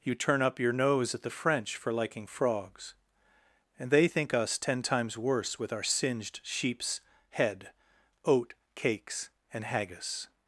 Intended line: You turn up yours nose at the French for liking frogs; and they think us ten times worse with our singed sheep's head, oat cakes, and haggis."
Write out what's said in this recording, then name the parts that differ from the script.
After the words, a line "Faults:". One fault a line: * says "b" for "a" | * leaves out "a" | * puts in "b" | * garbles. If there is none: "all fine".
You turn up your nose at the French for liking frogs; and they think us ten times worse with our singed sheep's head, oat cakes, and haggis."
Faults:
* says "your" for "yours"